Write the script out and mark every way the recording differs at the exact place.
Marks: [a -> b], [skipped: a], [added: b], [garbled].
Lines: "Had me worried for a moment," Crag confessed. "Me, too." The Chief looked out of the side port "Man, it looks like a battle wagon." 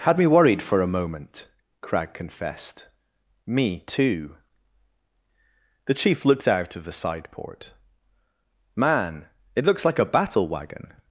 "Had me worried for a moment," Crag confessed. "Me, too." The Chief looked out of the side port "Man, it looks like a battle wagon."